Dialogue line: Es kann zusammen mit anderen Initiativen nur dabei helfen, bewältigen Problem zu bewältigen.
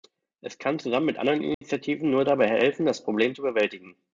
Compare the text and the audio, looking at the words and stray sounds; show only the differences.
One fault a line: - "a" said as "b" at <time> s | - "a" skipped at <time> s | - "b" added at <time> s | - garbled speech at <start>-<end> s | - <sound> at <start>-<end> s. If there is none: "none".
- dropout at 1.5-1.6 s
- "bewältigen" said as "das" at 2.9 s